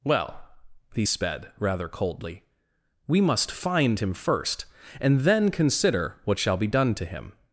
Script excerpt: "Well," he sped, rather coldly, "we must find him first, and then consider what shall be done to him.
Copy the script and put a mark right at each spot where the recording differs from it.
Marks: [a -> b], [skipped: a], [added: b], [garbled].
"Well," he sped, rather coldly, "we must find him first, and then consider what shall be done to him.